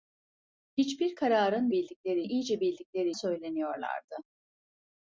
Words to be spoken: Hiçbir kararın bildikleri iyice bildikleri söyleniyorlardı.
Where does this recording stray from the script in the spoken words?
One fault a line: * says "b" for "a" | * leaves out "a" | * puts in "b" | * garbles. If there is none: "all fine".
all fine